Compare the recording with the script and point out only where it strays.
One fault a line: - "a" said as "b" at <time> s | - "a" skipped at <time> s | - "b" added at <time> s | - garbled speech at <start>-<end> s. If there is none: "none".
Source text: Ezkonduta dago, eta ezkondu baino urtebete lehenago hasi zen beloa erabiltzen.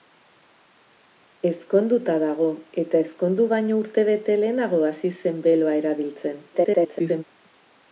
- garbled speech at 6.5-7.2 s